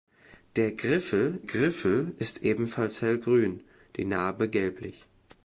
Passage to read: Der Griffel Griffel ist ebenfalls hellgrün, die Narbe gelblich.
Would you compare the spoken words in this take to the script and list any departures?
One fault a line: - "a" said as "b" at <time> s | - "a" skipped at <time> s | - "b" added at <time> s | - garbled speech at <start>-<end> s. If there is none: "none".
none